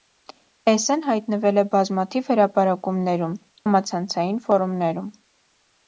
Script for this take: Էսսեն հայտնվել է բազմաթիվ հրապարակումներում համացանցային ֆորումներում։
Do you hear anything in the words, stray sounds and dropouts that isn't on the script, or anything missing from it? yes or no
no